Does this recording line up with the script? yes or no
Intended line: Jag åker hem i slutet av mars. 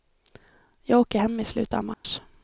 yes